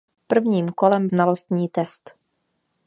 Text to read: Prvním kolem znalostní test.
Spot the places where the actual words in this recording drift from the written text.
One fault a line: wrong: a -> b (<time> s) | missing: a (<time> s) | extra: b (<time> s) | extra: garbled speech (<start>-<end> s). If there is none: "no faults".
no faults